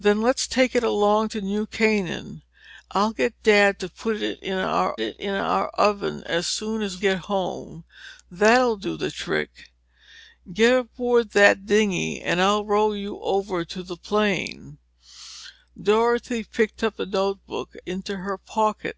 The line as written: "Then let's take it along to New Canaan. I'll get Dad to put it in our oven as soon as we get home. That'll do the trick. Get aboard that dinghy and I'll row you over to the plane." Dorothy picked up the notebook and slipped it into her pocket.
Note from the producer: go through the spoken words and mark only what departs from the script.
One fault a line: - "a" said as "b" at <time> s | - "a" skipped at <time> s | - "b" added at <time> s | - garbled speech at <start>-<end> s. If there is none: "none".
- "it in our" added at 5.0 s
- "we" skipped at 7.0 s
- "and slipped it" skipped at 17.7 s